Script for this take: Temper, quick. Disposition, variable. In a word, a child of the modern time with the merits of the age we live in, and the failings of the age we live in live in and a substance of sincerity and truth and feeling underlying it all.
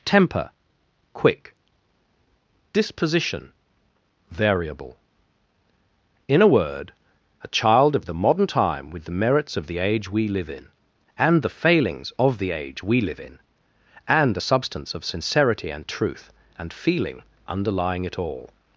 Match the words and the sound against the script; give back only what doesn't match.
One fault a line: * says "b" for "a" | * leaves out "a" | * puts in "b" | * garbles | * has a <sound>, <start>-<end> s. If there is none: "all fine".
* leaves out "live in"